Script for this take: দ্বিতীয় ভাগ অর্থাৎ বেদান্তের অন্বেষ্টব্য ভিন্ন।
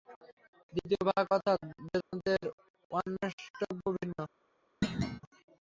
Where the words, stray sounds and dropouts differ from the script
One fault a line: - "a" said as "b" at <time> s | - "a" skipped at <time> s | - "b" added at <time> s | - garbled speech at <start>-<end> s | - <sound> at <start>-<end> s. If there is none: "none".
- dropout at 2.0-2.1 s
- thud at 4.8-5.2 s